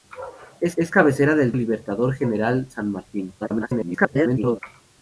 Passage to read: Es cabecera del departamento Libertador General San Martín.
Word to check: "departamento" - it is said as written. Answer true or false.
false